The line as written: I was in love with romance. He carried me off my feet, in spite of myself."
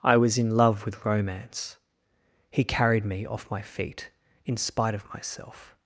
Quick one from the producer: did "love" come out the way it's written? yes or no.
yes